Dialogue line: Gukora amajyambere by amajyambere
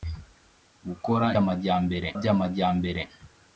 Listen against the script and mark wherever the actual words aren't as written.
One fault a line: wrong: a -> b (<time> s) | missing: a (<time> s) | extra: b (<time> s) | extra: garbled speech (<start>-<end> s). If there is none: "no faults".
no faults